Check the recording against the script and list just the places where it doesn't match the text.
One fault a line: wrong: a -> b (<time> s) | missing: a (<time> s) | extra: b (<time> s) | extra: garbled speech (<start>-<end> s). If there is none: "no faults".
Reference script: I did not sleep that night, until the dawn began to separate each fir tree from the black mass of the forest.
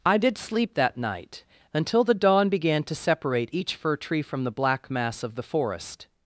missing: not (0.4 s)